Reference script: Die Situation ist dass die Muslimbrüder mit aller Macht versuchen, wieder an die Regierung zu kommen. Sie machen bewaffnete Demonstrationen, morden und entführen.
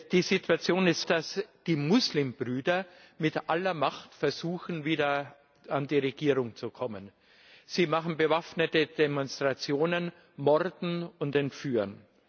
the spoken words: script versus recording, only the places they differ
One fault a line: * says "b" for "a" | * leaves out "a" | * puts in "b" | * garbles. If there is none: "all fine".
all fine